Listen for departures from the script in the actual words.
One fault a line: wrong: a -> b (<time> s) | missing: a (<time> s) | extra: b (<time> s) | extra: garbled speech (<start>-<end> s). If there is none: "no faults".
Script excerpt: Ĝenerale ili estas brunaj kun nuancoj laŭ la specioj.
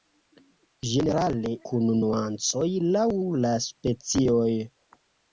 missing: ili estas brunaj (1.5 s)